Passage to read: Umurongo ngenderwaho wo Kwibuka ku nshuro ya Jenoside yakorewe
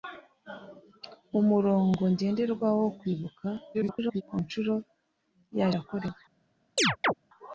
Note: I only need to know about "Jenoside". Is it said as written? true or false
false